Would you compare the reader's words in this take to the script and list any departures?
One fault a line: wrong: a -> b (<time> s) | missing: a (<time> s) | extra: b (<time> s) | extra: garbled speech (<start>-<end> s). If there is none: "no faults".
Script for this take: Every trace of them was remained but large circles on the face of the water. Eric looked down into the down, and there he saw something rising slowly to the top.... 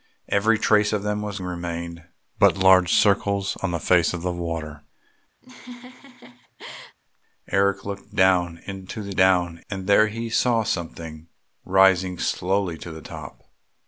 no faults